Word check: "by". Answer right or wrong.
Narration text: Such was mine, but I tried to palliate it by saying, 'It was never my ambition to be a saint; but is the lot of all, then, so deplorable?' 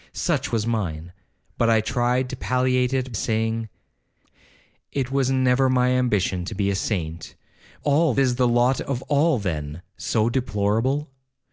wrong